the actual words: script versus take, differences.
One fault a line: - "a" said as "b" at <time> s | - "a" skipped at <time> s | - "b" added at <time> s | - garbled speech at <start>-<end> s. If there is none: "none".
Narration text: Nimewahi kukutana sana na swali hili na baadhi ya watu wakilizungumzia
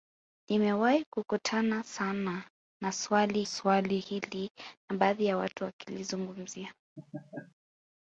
- "swali" added at 3.4 s